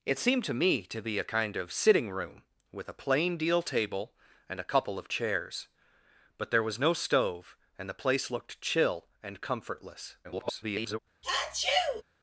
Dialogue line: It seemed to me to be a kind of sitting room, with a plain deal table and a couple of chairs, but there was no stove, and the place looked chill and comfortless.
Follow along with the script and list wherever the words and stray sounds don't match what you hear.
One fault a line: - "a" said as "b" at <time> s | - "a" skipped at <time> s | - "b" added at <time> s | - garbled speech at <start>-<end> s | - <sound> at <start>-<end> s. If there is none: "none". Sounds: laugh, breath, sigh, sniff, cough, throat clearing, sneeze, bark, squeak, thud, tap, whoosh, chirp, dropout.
- garbled speech at 10.2-11.0 s
- sneeze at 11.2-12.0 s